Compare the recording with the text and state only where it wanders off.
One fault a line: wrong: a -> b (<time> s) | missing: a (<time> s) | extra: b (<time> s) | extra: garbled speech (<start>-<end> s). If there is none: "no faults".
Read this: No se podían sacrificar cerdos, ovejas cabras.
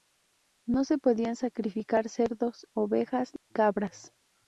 no faults